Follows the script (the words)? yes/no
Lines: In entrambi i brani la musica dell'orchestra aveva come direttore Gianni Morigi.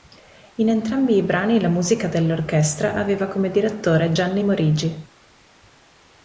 yes